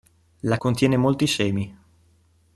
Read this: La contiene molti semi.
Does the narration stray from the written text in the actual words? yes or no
no